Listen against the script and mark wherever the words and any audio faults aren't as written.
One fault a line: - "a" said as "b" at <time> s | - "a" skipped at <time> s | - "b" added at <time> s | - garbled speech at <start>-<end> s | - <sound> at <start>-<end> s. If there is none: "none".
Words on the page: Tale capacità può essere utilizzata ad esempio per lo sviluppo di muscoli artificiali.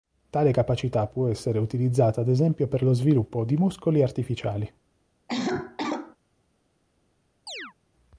- cough at 5.3-6.2 s
- chirp at 7.5-7.7 s